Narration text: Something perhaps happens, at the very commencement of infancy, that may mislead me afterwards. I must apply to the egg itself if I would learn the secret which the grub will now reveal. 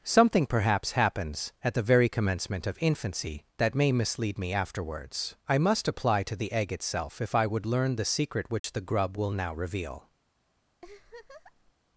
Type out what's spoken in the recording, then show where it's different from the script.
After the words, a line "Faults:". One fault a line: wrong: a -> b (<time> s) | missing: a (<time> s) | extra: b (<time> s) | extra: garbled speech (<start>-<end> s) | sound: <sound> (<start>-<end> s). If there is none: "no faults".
Something perhaps happens, at the very commencement of infancy, that may mislead me afterwards. I must apply to the egg itself if I would learn the secret which the grub will now reveal.
Faults:
sound: dropout (8.6-8.6 s)
sound: laugh (10.8-11.7 s)